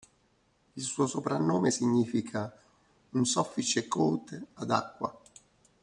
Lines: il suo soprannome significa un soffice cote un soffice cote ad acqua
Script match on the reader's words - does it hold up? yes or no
no